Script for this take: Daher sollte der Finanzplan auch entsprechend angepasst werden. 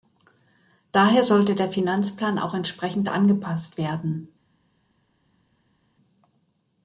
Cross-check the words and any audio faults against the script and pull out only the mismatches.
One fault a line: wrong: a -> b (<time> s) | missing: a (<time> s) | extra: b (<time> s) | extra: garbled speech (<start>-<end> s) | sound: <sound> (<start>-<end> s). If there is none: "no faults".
no faults